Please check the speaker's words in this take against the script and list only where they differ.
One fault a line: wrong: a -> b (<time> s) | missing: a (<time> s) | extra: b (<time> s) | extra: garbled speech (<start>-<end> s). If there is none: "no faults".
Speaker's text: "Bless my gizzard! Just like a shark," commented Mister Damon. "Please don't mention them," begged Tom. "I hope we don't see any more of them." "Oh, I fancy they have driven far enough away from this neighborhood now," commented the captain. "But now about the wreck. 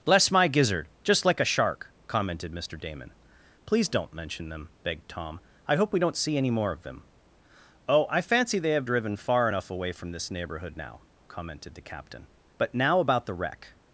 no faults